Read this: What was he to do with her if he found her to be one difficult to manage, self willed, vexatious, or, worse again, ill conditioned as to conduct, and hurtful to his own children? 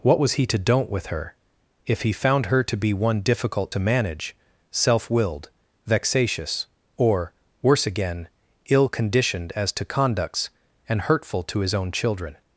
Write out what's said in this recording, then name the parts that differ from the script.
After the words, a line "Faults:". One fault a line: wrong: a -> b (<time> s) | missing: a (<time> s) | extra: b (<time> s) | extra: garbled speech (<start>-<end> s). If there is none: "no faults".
What was he to don't with her if he found her to be one difficult to manage, self willed, vexatious, or, worse again, ill conditioned as to conducts, and hurtful to his own children?
Faults:
wrong: do -> don't (0.6 s)
wrong: conduct -> conducts (9.9 s)